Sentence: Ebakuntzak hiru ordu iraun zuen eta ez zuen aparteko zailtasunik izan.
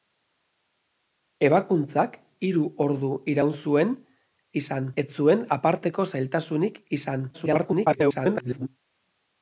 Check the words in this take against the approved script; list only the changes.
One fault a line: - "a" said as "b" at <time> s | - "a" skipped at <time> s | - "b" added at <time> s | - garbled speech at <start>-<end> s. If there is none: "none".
- "eta" said as "izan" at 4.6 s
- garbled speech at 7.3-8.7 s